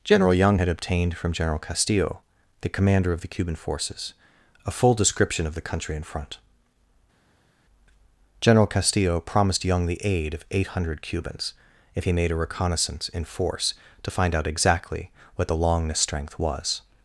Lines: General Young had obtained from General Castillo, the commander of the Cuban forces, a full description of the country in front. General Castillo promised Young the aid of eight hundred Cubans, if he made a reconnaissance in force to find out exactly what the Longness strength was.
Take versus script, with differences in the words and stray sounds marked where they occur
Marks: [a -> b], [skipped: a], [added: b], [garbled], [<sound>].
General Young had obtained from General Castillo, the commander of the Cuban forces, a full description of the country in front. General Castillo promised Young the aid of eight hundred Cubans, if he made a reconnaissance in force to find out exactly what the Longness strength was.